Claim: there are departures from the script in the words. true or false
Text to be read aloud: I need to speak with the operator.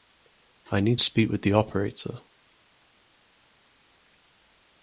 true